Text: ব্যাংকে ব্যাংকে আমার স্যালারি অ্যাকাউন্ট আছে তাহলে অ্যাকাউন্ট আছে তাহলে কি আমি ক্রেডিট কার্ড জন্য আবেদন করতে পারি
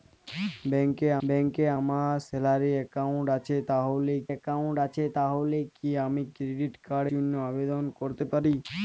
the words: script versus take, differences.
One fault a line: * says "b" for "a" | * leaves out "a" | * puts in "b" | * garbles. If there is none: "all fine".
all fine